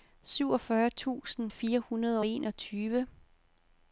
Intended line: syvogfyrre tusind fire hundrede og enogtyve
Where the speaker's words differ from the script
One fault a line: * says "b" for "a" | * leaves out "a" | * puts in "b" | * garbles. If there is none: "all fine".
all fine